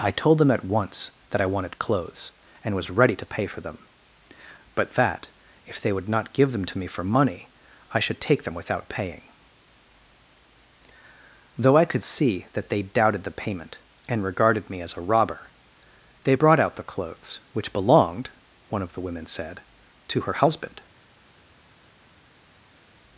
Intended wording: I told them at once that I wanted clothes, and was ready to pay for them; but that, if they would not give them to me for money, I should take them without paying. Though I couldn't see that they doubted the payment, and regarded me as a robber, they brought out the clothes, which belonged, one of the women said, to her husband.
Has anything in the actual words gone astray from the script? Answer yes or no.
yes